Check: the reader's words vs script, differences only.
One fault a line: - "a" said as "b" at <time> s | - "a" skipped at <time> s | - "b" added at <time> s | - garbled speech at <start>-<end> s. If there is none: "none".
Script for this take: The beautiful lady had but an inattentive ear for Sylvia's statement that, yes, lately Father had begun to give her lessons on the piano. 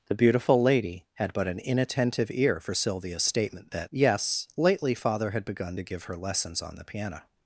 none